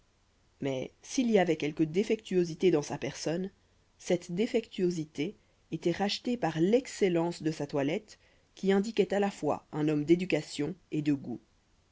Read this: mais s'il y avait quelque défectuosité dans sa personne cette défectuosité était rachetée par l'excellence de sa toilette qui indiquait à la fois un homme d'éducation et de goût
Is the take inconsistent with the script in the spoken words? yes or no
no